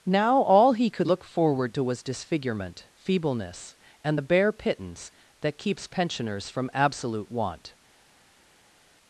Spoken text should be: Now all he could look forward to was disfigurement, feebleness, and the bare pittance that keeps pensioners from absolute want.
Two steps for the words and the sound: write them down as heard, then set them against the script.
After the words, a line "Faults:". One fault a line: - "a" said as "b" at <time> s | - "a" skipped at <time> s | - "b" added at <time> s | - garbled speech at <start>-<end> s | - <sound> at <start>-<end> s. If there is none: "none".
Now all he could look forward to was disfigurement, feebleness, and the bare pittance that keeps pensioners from absolute want.
Faults:
none